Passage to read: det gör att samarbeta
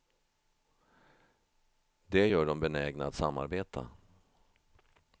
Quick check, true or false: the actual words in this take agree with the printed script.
false